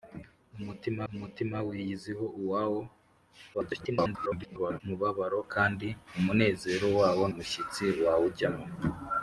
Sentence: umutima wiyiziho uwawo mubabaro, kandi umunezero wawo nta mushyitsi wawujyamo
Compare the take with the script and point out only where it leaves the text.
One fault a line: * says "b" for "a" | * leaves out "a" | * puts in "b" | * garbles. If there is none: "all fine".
* puts in "umutima"
* garbles
* leaves out "nta"